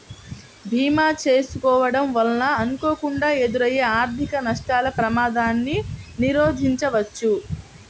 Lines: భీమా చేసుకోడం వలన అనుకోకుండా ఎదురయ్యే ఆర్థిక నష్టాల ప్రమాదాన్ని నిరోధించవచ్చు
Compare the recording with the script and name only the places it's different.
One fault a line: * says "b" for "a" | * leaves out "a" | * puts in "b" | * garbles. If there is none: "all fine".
all fine